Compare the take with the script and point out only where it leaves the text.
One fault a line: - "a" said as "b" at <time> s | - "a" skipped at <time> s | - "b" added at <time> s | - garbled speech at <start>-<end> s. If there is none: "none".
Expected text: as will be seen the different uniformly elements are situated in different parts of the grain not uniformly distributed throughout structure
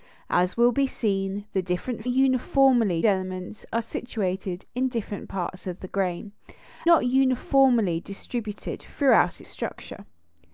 none